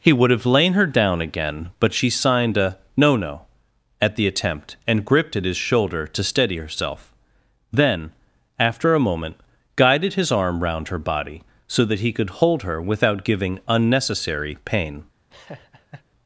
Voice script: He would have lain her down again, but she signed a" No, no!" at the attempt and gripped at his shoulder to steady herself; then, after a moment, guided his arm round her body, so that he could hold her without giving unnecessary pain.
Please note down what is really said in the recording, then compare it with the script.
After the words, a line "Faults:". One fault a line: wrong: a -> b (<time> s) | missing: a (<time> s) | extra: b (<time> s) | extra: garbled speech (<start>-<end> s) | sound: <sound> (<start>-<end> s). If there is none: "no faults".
He would have lain her down again, but she signed a" No, no!" at the attempt and gripped at his shoulder to steady herself; then, after a moment, guided his arm round her body, so that he could hold her without giving unnecessary pain.
Faults:
sound: laugh (15.3-16.1 s)